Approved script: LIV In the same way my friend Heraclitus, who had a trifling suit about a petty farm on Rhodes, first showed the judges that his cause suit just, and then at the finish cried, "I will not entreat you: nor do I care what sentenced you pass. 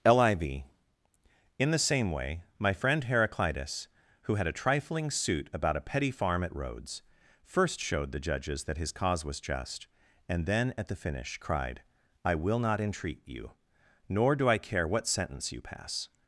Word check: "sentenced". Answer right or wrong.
wrong